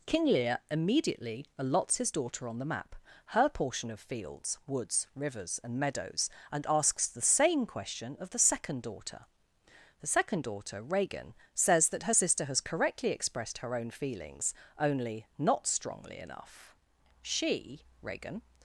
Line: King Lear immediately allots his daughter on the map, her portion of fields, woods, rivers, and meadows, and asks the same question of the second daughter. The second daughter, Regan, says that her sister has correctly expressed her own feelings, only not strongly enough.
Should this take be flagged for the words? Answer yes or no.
yes